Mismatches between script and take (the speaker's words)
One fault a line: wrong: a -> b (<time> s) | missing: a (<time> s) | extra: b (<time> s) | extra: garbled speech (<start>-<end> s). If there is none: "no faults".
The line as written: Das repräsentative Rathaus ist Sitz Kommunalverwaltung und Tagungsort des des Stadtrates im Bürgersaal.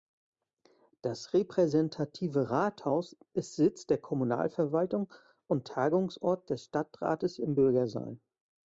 extra: der (3.9 s)
missing: des (6.6 s)